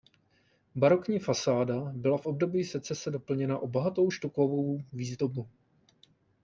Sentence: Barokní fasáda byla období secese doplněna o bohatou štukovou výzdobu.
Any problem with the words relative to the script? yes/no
yes